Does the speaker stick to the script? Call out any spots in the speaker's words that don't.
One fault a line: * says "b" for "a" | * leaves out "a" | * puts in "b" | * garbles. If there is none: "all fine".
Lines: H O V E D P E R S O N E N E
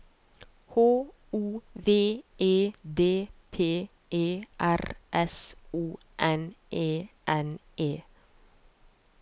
all fine